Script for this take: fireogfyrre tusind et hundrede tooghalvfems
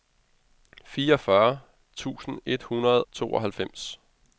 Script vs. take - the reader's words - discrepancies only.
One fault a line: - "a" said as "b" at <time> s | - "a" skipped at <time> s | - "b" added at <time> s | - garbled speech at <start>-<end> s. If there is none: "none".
none